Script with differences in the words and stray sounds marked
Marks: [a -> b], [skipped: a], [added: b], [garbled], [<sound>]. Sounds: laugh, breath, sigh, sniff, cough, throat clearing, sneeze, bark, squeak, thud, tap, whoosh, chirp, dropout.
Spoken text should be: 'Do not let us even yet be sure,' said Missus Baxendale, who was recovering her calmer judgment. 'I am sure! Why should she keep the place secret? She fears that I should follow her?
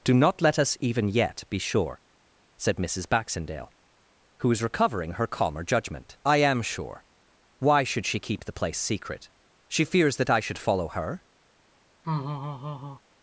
'Do not let us even yet be sure,' said Missus Baxendale, who was recovering her calmer judgment. 'I am sure! Why should she keep the place secret? She fears that I should follow her? [laugh]